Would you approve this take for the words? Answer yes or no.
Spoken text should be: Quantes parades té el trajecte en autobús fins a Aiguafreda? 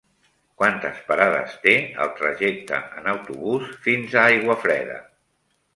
yes